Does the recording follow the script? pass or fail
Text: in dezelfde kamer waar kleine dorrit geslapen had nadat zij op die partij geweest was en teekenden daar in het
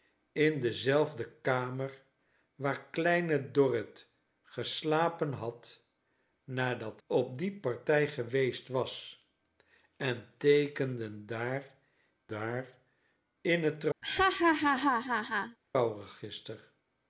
fail